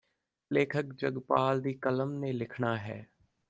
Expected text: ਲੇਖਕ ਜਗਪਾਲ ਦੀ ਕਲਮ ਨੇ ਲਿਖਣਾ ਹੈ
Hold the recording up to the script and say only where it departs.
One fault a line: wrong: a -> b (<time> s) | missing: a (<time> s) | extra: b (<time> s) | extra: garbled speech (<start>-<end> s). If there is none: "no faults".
no faults